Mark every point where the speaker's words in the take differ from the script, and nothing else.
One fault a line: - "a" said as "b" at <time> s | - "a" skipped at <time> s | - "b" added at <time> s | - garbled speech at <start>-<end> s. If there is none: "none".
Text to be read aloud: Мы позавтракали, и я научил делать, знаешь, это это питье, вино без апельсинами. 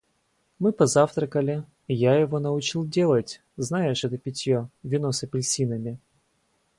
- "его" added at 2.1 s
- "это" skipped at 4.2 s
- "без" said as "с" at 5.1 s